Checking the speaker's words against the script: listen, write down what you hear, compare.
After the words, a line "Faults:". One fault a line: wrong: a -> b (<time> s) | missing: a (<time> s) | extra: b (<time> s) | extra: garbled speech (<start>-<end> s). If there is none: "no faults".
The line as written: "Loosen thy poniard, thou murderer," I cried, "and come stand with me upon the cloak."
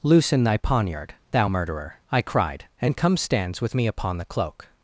"Loosen thy poniard, thou murderer," I cried, "and come stands with me upon the cloak."
Faults:
wrong: stand -> stands (3.2 s)